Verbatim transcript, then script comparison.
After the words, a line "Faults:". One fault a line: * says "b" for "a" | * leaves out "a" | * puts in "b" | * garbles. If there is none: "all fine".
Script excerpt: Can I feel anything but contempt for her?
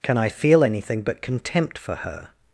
Can I feel anything but contempt for her?
Faults:
all fine